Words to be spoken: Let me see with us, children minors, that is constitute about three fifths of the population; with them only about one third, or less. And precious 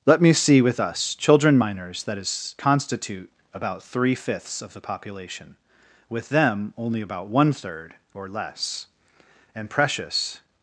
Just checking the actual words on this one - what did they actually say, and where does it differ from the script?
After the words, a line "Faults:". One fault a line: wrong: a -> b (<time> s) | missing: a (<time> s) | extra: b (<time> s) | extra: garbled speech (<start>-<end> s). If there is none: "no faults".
Let me see with us, children minors, that is constitute about three fifths of the population; with them only about one third, or less. And precious
Faults:
no faults